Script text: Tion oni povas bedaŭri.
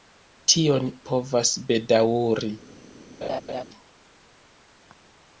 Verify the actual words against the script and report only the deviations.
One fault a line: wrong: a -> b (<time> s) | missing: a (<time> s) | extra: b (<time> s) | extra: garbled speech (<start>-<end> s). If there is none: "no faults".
missing: oni (0.9 s)